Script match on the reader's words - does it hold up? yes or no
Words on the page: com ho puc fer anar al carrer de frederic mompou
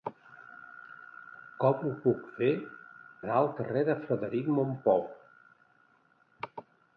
yes